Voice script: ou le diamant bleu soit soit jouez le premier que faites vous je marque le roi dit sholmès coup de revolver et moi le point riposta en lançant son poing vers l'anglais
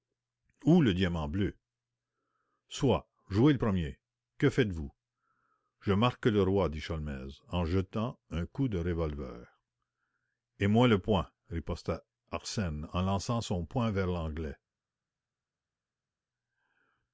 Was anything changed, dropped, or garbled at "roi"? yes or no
no